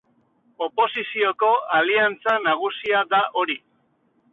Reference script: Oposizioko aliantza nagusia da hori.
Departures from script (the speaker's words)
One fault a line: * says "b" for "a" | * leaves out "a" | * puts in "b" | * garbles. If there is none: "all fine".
all fine